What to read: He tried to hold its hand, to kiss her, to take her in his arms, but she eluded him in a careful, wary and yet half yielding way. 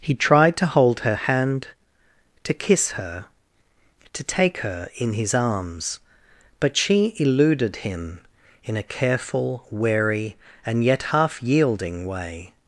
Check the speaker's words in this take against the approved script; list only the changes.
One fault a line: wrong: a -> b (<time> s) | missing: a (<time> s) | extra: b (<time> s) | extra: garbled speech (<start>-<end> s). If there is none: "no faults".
wrong: its -> her (1.0 s)